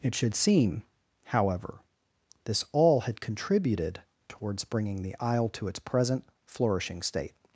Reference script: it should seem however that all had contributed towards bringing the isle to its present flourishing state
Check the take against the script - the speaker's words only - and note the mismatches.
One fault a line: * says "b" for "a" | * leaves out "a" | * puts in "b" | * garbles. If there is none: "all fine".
* says "this" for "that"